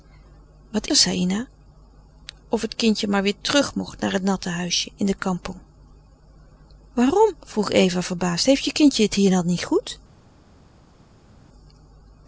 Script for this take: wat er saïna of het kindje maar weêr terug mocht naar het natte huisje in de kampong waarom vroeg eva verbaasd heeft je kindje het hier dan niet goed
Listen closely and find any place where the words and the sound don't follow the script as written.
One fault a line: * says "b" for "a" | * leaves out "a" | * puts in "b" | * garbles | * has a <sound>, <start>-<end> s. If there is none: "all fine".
all fine